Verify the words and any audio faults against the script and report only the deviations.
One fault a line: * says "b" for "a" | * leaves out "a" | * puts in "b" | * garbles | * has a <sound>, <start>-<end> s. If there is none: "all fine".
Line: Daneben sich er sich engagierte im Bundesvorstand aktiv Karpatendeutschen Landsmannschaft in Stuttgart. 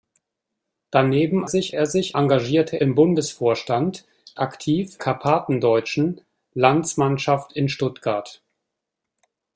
all fine